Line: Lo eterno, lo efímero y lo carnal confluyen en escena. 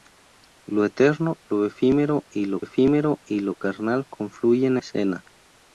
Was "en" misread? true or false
true